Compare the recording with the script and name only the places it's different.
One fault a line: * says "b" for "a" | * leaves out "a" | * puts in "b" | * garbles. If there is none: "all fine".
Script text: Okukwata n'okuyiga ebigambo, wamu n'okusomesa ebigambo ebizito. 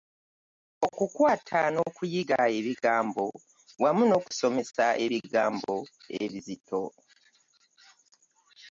all fine